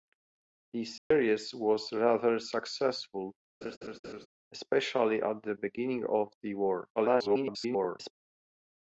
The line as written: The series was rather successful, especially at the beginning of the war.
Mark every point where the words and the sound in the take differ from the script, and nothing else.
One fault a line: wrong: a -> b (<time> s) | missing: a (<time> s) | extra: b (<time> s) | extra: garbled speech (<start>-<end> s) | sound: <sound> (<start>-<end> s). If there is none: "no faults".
sound: dropout (1.0-1.1 s)
sound: laugh (3.6-4.3 s)
extra: garbled speech (7.0-8.1 s)